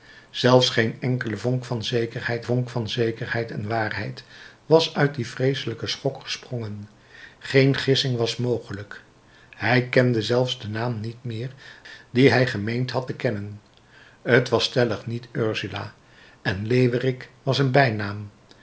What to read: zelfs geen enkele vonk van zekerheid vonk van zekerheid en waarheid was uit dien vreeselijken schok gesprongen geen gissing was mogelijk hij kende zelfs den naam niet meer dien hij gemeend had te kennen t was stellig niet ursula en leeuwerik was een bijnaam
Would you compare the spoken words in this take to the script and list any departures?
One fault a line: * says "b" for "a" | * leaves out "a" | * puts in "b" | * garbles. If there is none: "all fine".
all fine